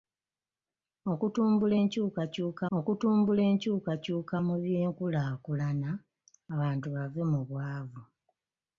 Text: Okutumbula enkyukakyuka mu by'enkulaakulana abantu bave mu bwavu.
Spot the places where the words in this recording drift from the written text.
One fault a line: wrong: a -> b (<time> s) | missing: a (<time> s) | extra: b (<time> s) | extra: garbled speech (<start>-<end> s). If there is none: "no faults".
extra: okutumbula enkyukakyuka (2.8 s)